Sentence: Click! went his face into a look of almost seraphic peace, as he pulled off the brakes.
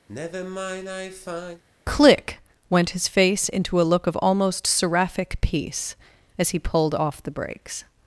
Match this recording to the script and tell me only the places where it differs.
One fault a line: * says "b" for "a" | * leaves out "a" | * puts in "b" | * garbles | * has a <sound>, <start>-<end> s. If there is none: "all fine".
* has a sigh, 0.1-1.6 s